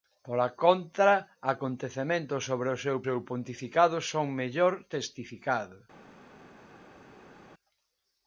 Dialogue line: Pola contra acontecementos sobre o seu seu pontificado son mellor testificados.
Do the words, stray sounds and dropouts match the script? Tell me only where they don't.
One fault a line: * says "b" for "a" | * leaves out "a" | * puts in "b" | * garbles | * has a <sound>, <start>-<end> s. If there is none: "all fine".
all fine